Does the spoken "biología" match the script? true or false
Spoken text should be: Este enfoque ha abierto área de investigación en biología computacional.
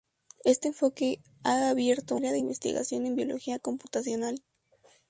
true